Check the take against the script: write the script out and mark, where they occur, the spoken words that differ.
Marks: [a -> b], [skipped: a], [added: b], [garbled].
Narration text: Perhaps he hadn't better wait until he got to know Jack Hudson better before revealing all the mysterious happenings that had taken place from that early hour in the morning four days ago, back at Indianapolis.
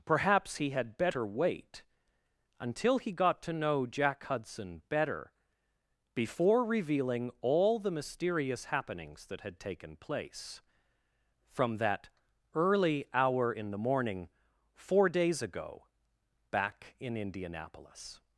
Perhaps he [hadn't -> had] better wait until he got to know Jack Hudson better before revealing all the mysterious happenings that had taken place from that early hour in the morning four days ago, back [at -> in] Indianapolis.